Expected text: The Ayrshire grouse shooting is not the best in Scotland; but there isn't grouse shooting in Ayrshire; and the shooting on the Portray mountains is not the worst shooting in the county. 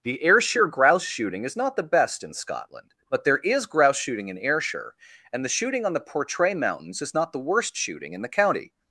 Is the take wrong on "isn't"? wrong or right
wrong